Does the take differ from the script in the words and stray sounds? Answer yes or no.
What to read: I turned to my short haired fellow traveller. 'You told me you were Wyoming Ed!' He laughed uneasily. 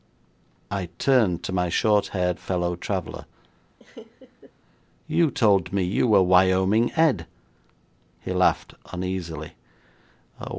yes